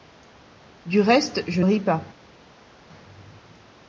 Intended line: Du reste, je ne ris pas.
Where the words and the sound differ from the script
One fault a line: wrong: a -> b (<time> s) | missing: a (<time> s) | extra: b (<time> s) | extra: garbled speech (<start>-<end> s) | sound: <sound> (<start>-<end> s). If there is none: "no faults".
missing: ne (1.6 s)